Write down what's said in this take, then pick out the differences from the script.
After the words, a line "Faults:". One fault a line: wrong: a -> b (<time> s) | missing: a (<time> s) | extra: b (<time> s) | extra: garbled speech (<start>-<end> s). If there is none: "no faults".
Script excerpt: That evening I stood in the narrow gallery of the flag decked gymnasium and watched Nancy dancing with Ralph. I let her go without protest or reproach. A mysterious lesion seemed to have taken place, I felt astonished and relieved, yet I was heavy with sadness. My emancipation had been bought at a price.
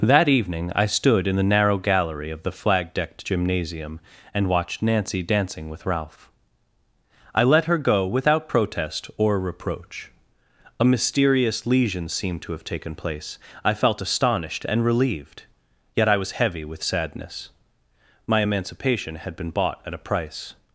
That evening I stood in the narrow gallery of the flag decked gymnasium and watched Nancy dancing with Ralph. I let her go without protest or reproach. A mysterious lesion seemed to have taken place, I felt astonished and relieved, yet I was heavy with sadness. My emancipation had been bought at a price.
Faults:
no faults